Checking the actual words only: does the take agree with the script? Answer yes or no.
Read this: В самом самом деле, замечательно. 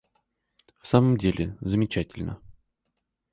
no